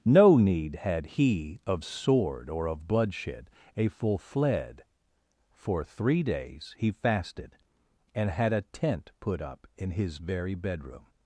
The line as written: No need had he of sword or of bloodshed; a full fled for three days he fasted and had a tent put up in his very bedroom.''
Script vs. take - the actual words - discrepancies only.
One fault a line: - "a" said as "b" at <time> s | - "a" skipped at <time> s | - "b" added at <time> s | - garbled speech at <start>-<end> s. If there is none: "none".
none